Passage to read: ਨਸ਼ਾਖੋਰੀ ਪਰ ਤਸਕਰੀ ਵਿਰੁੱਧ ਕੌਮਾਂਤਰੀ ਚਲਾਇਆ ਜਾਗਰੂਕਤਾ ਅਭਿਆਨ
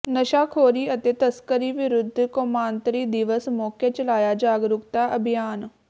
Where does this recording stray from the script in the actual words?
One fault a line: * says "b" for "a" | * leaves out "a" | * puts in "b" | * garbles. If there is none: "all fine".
* says "ਅਤੇ" for "ਪਰ"
* puts in "ਦਿਵਸ ਮੌਕੇ"